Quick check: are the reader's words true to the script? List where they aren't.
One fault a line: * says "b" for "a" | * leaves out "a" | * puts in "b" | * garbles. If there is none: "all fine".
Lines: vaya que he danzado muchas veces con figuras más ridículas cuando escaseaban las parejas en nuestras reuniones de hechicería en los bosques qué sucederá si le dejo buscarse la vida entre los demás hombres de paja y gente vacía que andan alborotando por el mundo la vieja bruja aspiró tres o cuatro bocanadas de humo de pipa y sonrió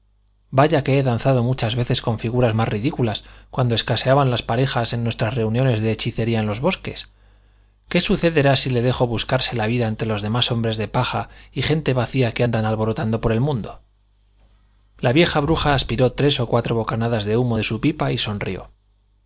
* puts in "su"